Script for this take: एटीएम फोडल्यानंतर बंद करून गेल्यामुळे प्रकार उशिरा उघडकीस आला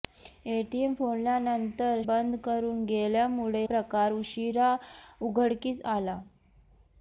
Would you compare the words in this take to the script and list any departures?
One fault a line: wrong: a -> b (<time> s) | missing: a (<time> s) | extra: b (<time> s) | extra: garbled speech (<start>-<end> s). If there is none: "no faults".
no faults